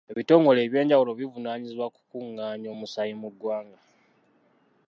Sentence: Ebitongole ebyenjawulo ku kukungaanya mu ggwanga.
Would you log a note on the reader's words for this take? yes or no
yes